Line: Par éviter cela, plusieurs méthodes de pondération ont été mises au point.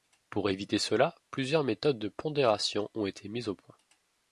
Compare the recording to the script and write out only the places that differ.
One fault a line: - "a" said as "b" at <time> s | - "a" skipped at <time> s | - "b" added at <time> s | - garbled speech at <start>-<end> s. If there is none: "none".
- "Par" said as "Pour" at 0.3 s